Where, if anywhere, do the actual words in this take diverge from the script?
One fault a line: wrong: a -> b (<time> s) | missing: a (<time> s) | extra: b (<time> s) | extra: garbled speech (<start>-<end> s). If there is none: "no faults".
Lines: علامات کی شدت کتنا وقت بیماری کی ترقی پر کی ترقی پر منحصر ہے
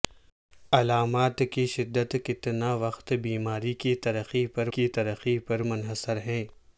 no faults